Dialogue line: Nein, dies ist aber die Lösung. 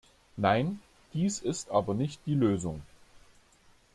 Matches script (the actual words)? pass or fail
fail